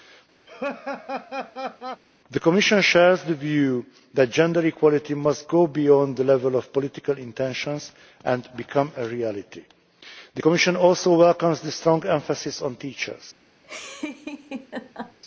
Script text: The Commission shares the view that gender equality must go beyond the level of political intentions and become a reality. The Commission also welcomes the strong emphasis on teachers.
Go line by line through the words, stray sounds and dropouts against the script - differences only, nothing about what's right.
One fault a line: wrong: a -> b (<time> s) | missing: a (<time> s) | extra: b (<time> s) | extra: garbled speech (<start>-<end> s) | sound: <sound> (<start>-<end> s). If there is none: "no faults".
sound: laugh (0.5-2.0 s)
sound: laugh (13.6-15.2 s)